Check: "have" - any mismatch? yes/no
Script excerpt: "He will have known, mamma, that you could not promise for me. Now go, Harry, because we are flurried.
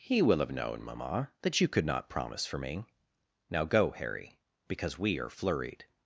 no